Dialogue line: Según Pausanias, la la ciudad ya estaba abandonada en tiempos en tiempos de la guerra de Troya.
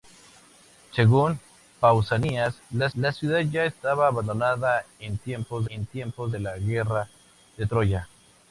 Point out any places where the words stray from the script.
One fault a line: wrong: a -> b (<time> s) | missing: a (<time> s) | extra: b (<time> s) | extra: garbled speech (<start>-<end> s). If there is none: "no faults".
no faults